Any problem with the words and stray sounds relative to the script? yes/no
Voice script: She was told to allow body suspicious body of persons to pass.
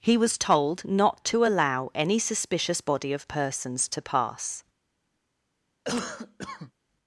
yes